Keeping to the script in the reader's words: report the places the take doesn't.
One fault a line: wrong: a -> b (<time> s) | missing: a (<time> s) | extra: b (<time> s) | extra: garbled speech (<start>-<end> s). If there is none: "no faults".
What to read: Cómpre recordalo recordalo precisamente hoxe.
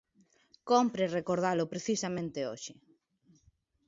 missing: recordalo (1.6 s)